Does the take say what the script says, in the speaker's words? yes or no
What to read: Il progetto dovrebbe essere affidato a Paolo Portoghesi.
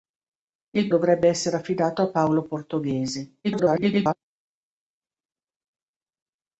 no